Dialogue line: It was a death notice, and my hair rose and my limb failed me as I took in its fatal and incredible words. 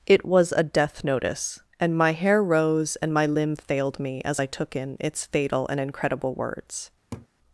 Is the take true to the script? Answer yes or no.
yes